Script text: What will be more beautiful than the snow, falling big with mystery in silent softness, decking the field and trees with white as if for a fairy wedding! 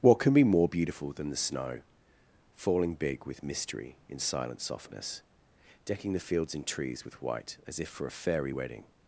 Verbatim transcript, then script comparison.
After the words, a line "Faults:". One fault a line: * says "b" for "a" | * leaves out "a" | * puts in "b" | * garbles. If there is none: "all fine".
What can be more beautiful than the snow, falling big with mystery in silent softness, decking the fields and trees with white as if for a fairy wedding!
Faults:
* says "can" for "will"
* says "fields" for "field"